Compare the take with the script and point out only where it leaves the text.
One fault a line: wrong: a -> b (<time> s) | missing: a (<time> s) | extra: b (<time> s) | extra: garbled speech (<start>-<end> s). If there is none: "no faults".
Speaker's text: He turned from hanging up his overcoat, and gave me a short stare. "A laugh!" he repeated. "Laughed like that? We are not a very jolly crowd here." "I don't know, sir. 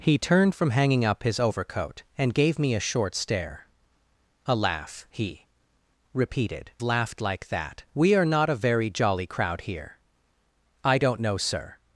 no faults